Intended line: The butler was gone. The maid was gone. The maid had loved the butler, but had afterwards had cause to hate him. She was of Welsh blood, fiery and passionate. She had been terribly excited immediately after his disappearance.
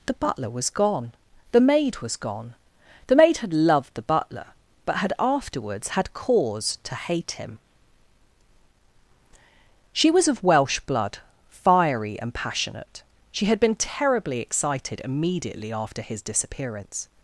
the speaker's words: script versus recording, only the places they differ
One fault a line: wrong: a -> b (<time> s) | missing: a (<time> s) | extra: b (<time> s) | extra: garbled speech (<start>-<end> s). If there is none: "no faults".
no faults